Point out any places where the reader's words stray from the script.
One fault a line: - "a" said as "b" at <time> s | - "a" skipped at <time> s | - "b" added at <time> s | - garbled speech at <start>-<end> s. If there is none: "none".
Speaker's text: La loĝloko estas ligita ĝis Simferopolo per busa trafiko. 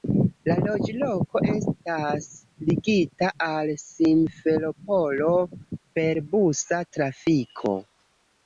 - "ĝis" said as "al" at 3.5 s